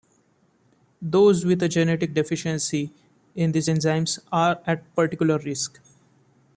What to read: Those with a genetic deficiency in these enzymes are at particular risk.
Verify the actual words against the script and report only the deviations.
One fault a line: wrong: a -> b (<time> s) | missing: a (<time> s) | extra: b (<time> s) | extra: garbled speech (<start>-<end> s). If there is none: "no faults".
no faults